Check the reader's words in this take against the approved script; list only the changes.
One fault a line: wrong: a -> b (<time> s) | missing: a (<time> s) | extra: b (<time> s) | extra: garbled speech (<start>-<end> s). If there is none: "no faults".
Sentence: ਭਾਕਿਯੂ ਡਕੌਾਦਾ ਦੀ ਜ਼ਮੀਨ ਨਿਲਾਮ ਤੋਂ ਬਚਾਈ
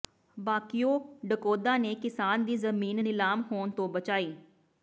extra: ਨੇ ਕਿਸਾਨ (1.8 s)
extra: ਹੋਣ (3.5 s)